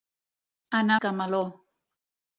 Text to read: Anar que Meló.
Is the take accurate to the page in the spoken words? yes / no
yes